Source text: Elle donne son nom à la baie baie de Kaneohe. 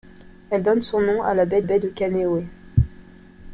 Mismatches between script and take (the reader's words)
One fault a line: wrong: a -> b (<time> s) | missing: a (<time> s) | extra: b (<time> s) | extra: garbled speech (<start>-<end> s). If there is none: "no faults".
no faults